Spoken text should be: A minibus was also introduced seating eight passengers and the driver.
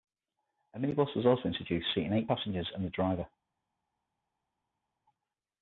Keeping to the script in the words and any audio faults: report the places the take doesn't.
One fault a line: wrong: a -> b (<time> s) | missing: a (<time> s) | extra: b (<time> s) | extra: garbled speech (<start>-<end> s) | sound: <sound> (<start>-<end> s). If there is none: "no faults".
no faults